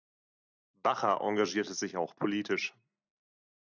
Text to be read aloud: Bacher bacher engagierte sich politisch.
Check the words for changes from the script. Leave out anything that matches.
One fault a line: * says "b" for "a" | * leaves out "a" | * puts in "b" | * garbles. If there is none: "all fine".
* leaves out "bacher"
* puts in "auch"